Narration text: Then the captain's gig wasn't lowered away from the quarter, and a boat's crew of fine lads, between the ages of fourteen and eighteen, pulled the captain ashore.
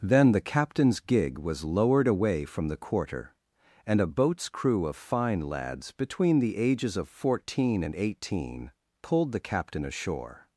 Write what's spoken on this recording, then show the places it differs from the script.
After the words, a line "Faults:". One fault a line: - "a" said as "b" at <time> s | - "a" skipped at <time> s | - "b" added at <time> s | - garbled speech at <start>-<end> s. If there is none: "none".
Then the captain's gig was lowered away from the quarter, and a boat's crew of fine lads, between the ages of fourteen and eighteen, pulled the captain ashore.
Faults:
- "wasn't" said as "was" at 1.4 s